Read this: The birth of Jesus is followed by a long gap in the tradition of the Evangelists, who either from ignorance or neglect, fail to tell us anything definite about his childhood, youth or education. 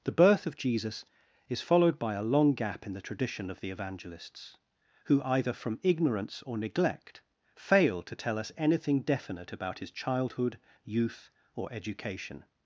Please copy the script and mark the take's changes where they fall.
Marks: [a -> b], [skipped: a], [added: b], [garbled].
The birth of Jesus is followed by a long gap in the tradition of the Evangelists, who either from ignorance or neglect, fail to tell us anything definite about his childhood, youth or education.